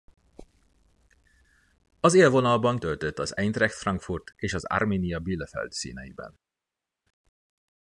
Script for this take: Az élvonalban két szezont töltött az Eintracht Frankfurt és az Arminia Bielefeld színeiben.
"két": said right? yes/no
no